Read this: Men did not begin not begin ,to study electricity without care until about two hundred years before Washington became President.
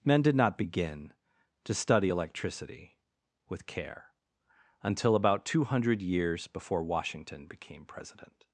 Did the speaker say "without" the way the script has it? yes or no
no